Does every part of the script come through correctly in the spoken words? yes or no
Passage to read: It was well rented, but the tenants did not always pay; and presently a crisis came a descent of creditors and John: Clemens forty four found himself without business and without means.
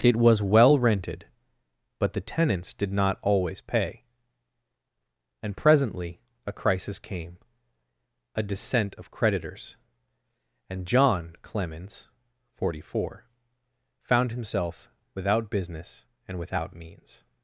yes